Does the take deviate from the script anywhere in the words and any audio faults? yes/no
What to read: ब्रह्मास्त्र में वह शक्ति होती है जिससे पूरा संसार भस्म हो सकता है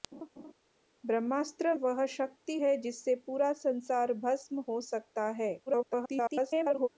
yes